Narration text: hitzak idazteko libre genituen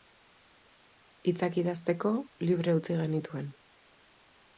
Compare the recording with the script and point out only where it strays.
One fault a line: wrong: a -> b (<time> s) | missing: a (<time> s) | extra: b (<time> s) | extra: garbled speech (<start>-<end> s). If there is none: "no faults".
extra: utzi (2.8 s)